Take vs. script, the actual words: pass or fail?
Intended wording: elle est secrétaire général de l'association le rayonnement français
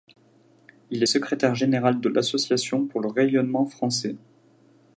fail